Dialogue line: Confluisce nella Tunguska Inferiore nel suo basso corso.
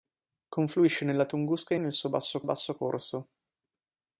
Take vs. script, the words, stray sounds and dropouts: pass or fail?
fail